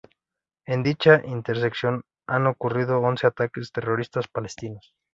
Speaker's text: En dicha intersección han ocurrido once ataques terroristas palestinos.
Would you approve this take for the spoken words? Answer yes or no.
yes